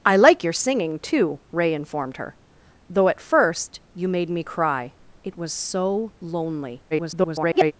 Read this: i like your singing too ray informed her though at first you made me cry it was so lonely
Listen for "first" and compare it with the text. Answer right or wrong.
right